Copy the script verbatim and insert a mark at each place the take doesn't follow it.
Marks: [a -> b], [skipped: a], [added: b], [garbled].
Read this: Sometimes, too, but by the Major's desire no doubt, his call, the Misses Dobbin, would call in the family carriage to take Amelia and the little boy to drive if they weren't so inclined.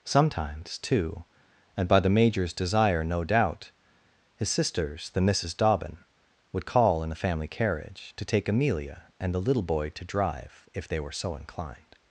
Sometimes, too, [but -> and] by the Major's desire no doubt, his [call, -> sisters] the Misses Dobbin, would call in the family carriage to take Amelia and the little boy to drive if they [weren't -> were] so inclined.